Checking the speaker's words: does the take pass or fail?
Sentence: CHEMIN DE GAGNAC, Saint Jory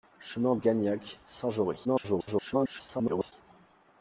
fail